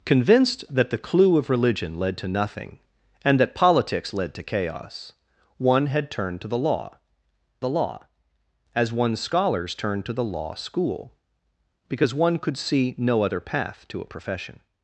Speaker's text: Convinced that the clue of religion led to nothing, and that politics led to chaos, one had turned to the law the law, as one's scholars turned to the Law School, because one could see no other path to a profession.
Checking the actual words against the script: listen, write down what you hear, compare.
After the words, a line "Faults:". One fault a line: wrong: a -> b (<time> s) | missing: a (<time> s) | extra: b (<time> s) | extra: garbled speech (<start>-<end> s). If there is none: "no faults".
Convinced that the clue of religion led to nothing, and that politics led to chaos, one had turned to the law the law, as one's scholars turned to the Law School, because one could see no other path to a profession.
Faults:
no faults